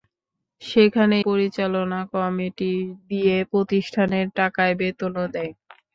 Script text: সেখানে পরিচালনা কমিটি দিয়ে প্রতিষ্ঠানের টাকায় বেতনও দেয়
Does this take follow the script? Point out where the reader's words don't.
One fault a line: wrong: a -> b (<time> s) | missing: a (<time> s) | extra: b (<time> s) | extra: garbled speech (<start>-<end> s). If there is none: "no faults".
no faults